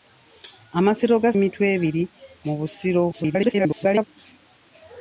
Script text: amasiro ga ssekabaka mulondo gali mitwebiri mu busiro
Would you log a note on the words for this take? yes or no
yes